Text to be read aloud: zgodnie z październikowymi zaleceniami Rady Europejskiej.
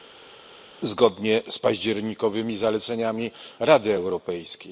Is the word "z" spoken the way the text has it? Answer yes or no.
yes